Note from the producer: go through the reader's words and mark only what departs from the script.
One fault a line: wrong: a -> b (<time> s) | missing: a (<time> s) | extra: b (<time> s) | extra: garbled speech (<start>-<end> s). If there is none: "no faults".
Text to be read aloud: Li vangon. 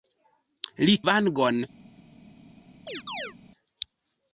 no faults